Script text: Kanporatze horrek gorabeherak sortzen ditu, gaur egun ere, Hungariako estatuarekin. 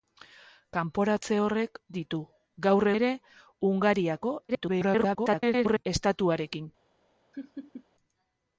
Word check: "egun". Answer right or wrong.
wrong